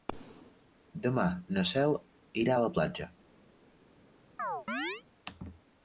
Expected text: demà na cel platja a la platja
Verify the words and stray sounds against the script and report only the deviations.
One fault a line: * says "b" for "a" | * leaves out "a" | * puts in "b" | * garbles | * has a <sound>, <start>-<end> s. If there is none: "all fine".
* says "irà" for "platja"
* has a chirp, 4.4-5.0 s